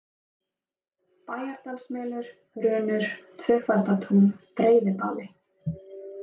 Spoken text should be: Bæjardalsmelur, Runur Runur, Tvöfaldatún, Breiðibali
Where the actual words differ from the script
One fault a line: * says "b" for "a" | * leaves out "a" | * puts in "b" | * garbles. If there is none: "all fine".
* leaves out "Runur"